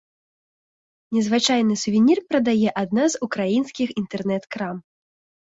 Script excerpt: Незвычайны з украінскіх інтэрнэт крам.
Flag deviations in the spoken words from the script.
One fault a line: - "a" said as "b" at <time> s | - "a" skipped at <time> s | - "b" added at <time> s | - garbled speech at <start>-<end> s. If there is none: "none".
- "сувенір прадае адна" added at 1.8 s